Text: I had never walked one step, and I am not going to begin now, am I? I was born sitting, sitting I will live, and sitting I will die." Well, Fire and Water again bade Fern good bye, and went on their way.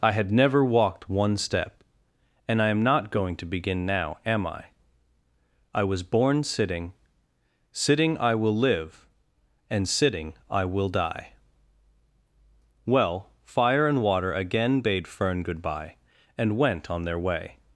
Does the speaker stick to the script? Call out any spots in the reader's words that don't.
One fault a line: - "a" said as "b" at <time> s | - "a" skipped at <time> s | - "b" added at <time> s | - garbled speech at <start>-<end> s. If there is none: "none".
none